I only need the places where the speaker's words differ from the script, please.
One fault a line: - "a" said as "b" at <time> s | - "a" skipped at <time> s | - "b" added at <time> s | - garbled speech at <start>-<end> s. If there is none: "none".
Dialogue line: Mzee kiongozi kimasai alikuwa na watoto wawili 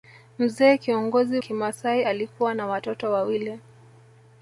none